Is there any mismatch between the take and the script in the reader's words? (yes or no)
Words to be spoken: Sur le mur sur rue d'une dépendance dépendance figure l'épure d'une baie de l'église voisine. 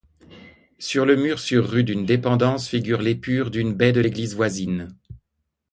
yes